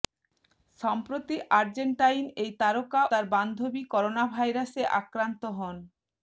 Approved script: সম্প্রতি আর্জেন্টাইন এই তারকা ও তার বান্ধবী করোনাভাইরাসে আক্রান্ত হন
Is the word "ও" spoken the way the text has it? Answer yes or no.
no